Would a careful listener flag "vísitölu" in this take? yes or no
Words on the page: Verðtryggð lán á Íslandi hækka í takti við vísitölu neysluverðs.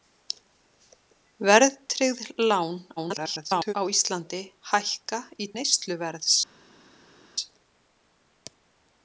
yes